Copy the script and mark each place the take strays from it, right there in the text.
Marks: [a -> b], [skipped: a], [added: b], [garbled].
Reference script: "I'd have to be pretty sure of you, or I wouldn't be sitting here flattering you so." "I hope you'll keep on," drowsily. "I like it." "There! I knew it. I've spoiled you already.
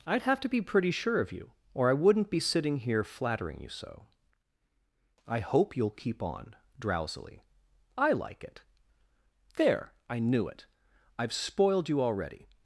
"I'd have to be pretty sure of you, or I wouldn't be sitting here flattering you so." "I hope you'll keep on," drowsily. "I like it." "There! I knew it. I've spoiled you already.